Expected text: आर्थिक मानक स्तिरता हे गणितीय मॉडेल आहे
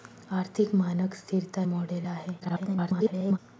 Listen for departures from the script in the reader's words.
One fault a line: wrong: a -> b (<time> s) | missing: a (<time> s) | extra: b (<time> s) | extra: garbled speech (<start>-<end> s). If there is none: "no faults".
missing: हे गणितीय (1.6 s)
extra: garbled speech (2.4-3.4 s)